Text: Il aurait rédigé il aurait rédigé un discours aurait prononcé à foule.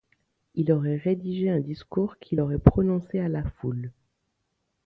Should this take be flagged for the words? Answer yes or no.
yes